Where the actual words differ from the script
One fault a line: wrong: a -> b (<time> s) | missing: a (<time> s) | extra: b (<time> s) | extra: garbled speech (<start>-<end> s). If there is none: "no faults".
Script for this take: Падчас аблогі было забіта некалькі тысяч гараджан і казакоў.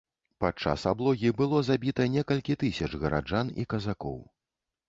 no faults